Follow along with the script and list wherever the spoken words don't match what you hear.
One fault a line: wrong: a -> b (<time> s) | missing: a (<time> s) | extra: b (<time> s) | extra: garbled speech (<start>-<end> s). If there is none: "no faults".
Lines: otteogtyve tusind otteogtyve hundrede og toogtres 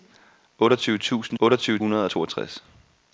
no faults